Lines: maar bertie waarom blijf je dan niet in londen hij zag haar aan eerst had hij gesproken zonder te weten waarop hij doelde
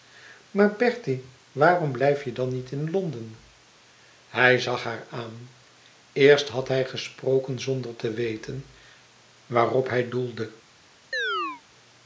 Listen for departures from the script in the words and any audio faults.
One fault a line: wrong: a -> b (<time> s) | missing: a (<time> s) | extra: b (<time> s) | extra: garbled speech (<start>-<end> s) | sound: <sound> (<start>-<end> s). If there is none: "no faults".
sound: chirp (11.1-11.6 s)